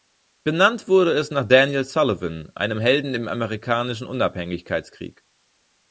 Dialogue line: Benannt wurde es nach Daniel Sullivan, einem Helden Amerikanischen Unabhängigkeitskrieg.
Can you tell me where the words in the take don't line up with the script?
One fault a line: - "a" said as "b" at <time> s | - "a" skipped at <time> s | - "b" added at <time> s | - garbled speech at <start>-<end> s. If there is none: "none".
- "im" added at 3.1 s